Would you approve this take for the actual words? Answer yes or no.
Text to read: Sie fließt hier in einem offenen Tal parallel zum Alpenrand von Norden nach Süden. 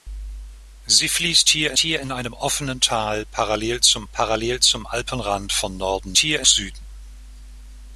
no